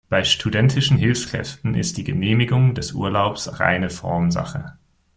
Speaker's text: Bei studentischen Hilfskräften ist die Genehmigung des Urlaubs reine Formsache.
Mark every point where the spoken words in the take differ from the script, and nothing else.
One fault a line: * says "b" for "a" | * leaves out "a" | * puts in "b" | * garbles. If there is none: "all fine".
all fine